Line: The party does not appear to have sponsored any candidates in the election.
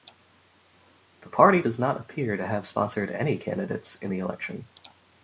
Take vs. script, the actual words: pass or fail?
pass